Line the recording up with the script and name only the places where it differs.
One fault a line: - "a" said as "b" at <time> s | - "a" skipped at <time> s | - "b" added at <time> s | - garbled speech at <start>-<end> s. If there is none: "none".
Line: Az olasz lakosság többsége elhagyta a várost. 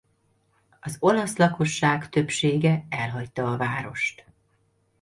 none